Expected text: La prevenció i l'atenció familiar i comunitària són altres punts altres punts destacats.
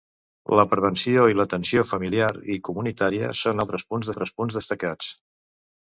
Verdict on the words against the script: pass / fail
pass